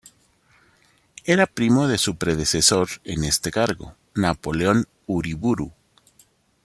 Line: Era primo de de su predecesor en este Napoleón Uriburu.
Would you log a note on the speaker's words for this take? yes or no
yes